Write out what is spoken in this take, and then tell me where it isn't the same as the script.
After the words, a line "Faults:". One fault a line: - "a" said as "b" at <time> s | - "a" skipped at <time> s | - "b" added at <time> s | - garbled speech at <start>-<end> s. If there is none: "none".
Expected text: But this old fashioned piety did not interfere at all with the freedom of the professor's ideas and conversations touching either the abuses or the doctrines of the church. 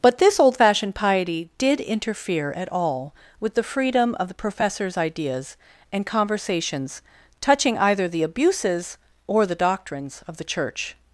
But this old fashioned piety did interfere at all with the freedom of the professor's ideas and conversations touching either the abuses or the doctrines of the church.
Faults:
- "not" skipped at 1.8 s